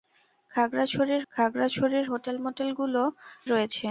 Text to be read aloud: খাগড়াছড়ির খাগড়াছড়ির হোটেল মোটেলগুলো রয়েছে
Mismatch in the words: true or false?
false